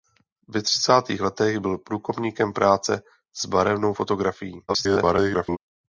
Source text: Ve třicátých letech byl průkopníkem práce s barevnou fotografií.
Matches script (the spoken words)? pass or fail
fail